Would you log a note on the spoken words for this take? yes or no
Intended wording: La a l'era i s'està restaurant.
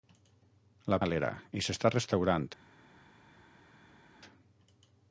no